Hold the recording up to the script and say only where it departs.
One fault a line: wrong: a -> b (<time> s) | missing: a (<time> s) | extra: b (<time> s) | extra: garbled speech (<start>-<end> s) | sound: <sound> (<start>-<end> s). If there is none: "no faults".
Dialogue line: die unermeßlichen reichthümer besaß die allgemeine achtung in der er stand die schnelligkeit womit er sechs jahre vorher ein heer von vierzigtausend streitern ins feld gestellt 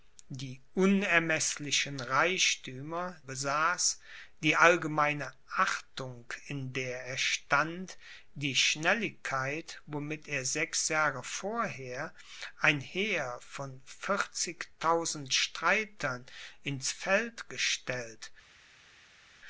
no faults